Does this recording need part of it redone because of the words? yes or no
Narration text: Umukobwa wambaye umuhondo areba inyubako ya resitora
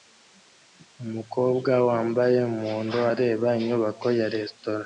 no